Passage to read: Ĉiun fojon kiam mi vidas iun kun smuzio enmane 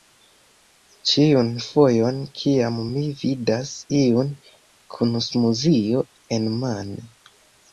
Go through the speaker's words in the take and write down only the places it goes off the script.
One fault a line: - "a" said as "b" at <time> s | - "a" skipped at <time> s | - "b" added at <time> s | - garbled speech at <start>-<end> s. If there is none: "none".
none